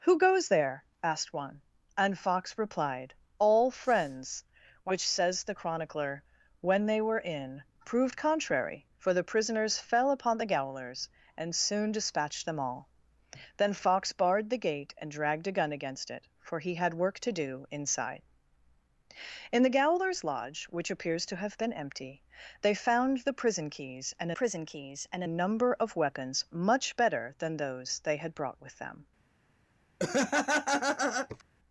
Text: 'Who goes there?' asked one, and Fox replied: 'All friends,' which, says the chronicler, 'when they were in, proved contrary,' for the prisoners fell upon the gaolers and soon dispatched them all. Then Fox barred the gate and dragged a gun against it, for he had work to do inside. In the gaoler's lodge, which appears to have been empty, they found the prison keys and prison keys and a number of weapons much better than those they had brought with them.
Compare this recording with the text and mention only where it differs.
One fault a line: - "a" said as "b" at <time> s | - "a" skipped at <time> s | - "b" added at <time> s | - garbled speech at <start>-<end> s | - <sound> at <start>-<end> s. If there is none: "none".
- laugh at 30.0-31.4 s